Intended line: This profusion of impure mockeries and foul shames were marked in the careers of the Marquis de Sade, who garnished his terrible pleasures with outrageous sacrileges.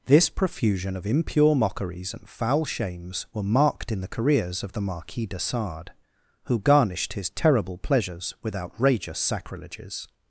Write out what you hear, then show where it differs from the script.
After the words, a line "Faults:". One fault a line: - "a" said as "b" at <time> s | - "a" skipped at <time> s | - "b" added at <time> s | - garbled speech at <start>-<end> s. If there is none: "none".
This profusion of impure mockeries and foul shames were marked in the careers of the Marquis de Sade, who garnished his terrible pleasures with outrageous sacrileges.
Faults:
none